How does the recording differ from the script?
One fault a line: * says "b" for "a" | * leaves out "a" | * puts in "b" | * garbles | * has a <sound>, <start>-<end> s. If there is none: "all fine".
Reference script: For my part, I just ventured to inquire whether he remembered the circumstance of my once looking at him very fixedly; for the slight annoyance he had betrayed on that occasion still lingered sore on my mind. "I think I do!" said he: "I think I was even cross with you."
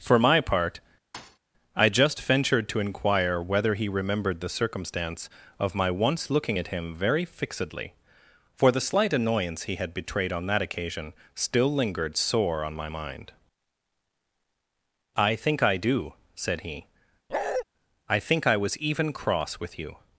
* has a thud, 1.1-1.4 s
* has a bark, 17.3-17.6 s